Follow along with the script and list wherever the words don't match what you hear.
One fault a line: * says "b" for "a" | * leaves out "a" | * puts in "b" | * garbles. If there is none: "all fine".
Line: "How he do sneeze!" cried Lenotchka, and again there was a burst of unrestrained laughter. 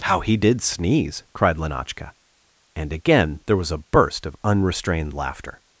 * says "did" for "do"